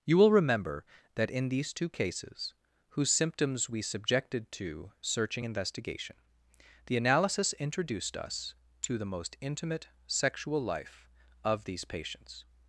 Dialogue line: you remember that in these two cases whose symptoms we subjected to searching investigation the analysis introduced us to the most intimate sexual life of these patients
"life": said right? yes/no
yes